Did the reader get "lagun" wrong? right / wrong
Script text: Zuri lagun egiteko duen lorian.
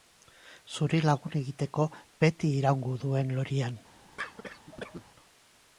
right